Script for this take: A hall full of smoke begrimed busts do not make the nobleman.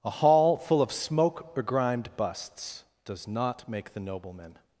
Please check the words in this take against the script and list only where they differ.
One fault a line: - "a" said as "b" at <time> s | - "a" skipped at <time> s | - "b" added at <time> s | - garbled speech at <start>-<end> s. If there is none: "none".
- "do" said as "does" at 3.0 s